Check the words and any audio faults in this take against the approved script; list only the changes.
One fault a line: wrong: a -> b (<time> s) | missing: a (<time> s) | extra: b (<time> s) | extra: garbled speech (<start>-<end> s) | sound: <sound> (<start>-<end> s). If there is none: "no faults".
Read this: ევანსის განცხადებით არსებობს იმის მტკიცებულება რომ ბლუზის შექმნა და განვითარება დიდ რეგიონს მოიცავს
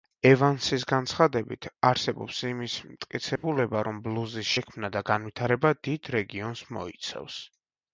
sound: dropout (3.4-3.4 s)